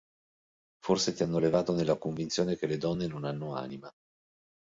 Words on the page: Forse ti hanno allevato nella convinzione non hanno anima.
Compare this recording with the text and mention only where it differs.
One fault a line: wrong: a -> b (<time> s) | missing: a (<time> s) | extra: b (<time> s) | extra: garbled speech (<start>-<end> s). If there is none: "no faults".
extra: che le donne (2.6 s)